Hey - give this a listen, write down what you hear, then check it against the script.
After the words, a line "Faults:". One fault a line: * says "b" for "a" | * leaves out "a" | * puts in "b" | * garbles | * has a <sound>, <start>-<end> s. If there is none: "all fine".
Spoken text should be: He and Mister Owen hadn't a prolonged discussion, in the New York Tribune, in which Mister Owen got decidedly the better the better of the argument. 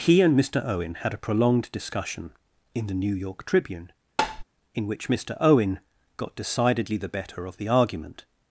He and Mister Owen had a prolonged discussion, in the New York Tribune, in which Mister Owen got decidedly the better of the argument.
Faults:
* says "had" for "hadn't"
* has a tap, 4.2-4.4 s
* leaves out "the better"